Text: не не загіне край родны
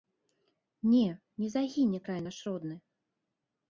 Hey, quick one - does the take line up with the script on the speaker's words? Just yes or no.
no